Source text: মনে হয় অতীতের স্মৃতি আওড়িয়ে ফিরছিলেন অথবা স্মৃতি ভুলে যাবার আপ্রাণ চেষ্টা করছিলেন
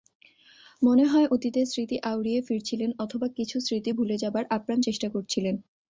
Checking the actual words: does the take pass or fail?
fail